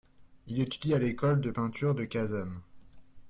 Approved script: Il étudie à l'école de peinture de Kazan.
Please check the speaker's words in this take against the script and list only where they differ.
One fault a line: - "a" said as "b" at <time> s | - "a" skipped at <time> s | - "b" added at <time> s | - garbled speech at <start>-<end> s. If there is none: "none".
none